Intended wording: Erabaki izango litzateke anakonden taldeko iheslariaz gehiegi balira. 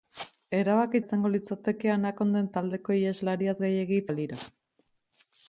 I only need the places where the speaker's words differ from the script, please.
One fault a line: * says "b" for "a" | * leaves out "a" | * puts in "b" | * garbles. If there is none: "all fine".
all fine